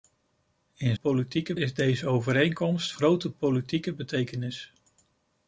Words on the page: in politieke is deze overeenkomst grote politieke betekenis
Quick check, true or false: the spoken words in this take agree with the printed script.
true